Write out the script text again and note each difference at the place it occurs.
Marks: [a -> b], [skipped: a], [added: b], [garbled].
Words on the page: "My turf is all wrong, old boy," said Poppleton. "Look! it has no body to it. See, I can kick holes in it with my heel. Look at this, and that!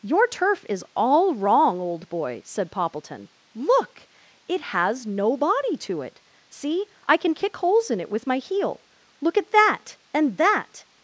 ["My -> Your] turf is all wrong, old boy," said Poppleton. "Look! it has no body to it. See, I can kick holes in it with my heel. Look at [this, -> that] and that!